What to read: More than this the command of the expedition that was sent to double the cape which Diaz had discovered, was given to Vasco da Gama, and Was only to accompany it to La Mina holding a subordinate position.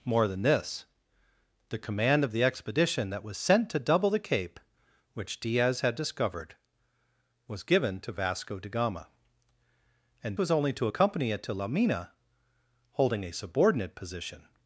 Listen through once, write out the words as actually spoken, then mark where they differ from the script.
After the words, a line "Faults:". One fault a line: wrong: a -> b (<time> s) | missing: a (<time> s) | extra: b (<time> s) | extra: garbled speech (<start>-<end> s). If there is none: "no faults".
More than this the command of the expedition that was sent to double the cape which Diaz had discovered, was given to Vasco da Gama, and Was only to accompany it to La Mina holding a subordinate position.
Faults:
no faults